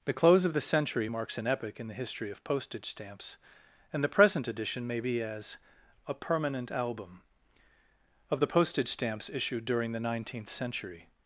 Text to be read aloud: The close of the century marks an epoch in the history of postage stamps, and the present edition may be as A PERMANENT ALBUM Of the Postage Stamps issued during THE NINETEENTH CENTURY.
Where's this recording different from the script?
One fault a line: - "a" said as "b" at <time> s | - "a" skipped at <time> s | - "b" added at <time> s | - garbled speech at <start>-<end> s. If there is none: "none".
none